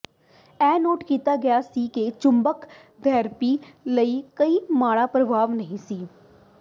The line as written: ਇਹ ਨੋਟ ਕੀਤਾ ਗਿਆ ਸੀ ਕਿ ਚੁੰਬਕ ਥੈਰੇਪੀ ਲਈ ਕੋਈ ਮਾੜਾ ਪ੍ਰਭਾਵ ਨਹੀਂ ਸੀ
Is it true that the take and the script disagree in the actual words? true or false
false